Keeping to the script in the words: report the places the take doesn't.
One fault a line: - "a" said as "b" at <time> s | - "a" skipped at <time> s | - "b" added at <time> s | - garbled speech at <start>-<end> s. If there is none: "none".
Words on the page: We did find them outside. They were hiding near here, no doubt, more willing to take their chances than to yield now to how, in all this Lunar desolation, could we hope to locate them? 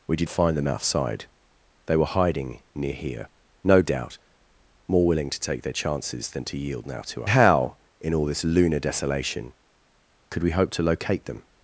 none